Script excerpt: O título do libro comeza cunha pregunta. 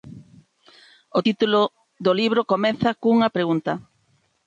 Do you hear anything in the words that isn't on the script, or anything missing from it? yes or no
no